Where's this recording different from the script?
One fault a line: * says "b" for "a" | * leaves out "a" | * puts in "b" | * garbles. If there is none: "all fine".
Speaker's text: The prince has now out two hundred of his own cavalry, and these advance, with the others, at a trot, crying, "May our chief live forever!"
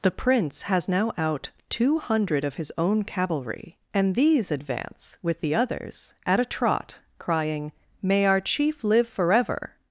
all fine